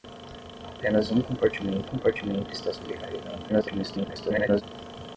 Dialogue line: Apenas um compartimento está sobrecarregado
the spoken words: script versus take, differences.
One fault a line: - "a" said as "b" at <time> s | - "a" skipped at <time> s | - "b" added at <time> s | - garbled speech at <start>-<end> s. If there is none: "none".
- "compartimento" added at 1.8 s
- garbled speech at 3.5-4.6 s